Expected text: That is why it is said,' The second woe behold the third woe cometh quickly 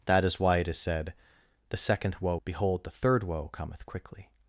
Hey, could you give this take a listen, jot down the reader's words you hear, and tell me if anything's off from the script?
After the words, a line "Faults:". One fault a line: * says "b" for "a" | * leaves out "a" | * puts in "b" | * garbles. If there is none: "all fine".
That is why it is said,' The second woe behold the third woe cometh quickly
Faults:
all fine